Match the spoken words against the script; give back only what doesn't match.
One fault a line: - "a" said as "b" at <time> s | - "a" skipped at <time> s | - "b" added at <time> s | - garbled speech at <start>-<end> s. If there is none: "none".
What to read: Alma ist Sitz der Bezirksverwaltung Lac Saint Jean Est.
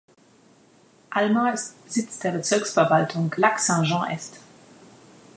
none